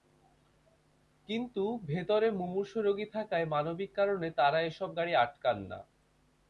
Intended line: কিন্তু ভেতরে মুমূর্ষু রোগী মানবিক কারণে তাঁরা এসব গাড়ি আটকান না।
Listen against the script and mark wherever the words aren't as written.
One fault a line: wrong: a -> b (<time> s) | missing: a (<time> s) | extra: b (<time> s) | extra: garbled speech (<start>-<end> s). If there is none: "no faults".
extra: থাকায় (3.1 s)